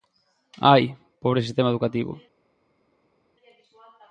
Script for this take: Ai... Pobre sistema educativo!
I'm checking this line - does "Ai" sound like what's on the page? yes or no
yes